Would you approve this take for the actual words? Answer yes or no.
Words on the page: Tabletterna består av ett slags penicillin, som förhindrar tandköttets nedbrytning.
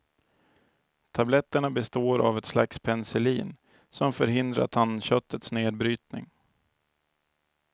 yes